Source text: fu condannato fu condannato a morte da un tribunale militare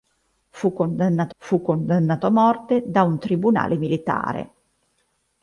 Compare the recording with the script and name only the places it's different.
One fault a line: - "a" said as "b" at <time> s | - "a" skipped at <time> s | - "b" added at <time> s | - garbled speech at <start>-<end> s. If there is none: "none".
none